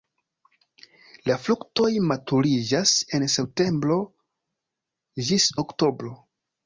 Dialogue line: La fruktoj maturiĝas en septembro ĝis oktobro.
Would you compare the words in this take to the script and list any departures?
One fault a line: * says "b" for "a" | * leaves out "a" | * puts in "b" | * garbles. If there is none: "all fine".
all fine